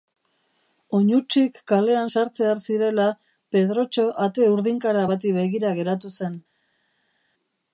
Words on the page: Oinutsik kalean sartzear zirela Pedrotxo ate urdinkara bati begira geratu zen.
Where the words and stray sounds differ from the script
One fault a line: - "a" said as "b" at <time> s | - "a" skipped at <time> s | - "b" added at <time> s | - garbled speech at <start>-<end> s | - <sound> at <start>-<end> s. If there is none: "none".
none